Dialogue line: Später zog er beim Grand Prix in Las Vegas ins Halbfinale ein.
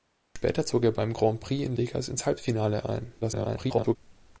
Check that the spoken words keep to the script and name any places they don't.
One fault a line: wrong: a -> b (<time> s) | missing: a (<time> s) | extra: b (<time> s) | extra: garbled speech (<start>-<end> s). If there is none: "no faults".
missing: Las (1.8 s)
extra: garbled speech (3.2-4.0 s)